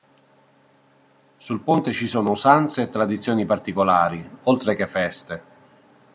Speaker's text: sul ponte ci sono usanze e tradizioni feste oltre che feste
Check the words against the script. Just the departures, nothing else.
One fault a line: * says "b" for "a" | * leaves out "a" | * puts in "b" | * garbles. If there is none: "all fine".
* says "particolari" for "feste"